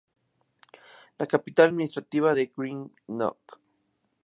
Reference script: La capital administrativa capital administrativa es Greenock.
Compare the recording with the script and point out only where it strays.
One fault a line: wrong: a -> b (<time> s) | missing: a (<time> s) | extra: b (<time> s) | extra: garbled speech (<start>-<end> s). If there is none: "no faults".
missing: capital administrativa (2.3 s)